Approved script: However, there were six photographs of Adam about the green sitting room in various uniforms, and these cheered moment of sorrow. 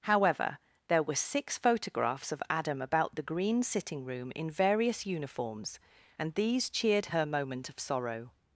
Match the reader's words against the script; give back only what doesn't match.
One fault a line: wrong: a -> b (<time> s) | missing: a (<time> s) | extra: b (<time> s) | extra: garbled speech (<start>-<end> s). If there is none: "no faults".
extra: her (7.1 s)